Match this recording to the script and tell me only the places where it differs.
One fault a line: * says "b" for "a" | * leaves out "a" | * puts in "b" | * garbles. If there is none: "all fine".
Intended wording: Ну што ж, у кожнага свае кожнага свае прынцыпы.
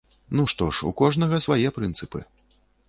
* leaves out "кожнага свае"